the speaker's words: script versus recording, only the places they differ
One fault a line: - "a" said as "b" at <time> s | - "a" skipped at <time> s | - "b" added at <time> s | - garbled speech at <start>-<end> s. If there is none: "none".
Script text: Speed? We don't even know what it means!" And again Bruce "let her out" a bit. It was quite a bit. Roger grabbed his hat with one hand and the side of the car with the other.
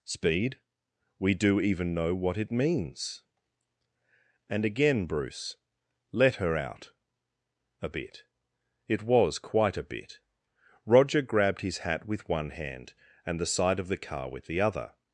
- "don't" said as "do" at 1.3 s